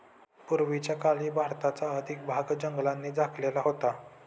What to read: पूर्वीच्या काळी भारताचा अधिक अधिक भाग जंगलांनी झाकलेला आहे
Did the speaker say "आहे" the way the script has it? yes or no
no